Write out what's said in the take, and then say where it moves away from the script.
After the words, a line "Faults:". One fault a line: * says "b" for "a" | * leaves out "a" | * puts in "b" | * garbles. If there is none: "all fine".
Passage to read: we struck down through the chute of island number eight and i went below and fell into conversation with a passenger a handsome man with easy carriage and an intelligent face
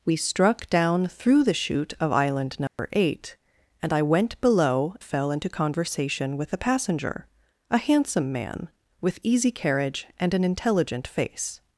we struck down through the chute of island number eight and i went below fell into conversation with a passenger a handsome man with easy carriage and an intelligent face
Faults:
* leaves out "and"